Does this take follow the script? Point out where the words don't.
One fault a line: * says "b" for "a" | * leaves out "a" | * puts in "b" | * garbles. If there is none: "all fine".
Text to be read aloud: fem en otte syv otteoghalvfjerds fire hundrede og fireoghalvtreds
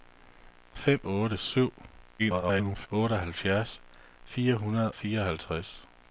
* leaves out "en"
* garbles
* leaves out "og"